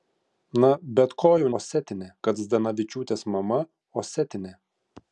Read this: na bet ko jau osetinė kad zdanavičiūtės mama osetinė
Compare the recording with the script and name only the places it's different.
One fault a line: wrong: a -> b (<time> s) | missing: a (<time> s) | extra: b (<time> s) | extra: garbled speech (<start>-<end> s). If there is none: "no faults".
no faults